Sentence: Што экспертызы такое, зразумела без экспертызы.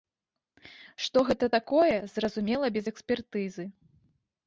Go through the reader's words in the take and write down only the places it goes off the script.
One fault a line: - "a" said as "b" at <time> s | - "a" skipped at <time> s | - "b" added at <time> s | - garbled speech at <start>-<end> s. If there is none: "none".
- "экспертызы" said as "гэта" at 1.3 s